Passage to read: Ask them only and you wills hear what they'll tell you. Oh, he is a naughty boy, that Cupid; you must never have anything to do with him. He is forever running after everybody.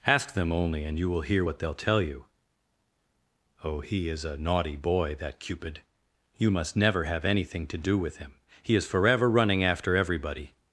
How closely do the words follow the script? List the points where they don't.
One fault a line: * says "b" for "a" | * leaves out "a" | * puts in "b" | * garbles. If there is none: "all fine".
* says "will" for "wills"